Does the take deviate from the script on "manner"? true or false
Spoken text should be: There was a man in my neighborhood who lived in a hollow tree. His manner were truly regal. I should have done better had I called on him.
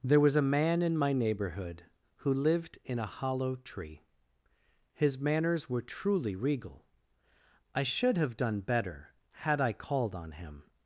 true